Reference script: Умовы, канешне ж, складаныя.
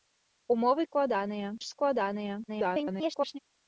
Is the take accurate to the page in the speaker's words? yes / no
no